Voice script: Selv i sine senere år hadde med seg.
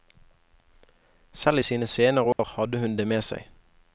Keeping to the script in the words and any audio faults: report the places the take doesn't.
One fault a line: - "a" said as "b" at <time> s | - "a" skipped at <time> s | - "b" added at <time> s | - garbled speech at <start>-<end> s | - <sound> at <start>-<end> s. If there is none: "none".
- dropout at 2.3-2.4 s
- "hun det" added at 2.8 s